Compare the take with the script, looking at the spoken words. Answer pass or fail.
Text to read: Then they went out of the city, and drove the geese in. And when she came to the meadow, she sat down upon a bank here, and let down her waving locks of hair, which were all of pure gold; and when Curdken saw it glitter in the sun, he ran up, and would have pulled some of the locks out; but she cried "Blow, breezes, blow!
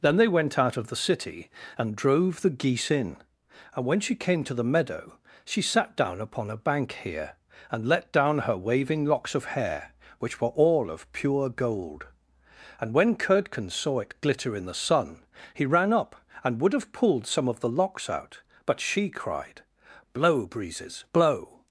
pass